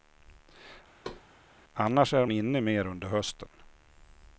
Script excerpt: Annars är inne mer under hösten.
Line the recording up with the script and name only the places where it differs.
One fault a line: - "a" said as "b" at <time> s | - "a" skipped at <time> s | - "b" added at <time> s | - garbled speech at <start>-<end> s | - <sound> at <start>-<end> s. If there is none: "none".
- thud at 1.0-1.2 s